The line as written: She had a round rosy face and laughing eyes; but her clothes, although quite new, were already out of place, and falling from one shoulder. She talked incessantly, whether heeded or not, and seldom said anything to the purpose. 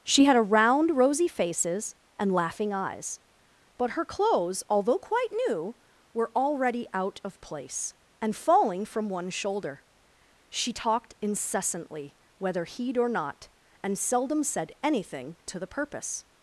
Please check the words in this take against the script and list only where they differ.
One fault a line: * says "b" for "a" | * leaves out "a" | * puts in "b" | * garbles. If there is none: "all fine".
* says "faces" for "face"
* says "heed" for "heeded"